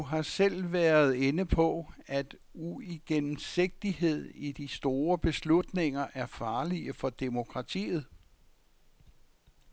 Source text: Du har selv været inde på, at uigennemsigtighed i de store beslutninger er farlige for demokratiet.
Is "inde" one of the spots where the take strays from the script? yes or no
no